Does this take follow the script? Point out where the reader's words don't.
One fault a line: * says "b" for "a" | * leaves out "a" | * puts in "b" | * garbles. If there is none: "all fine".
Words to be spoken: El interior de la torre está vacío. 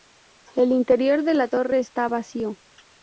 all fine